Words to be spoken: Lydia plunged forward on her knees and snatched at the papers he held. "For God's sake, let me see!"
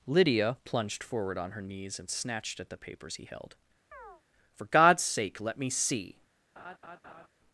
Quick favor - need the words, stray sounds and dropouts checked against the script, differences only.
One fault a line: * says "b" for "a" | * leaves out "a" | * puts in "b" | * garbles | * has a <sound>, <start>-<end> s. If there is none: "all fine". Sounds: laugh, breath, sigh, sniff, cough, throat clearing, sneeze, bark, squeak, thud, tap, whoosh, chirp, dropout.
* has a chirp, 3.9-4.2 s
* has a laugh, 6.6-7.3 s